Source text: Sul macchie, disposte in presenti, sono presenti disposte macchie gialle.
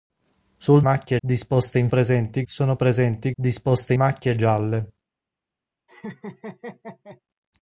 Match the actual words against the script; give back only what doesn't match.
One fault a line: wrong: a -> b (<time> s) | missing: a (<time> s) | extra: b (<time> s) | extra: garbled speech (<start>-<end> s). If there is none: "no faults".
no faults